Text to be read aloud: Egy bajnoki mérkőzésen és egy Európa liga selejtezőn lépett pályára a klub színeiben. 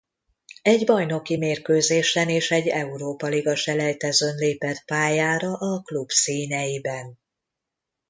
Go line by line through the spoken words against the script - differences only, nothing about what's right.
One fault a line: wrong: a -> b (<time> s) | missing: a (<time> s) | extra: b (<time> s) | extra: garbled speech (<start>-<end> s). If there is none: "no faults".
no faults